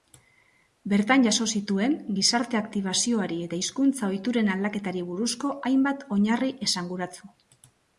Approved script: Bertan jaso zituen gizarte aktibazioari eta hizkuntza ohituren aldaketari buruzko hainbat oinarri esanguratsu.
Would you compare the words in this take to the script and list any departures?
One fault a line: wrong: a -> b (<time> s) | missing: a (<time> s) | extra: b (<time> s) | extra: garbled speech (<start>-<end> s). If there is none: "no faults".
no faults